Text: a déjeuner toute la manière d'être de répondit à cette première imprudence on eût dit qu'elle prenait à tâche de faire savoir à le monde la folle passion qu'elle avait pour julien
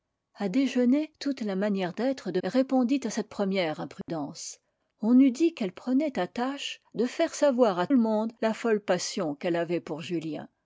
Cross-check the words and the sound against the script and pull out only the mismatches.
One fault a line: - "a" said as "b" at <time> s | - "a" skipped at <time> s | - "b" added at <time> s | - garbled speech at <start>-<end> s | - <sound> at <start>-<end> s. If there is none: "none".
- dropout at 4.0-4.1 s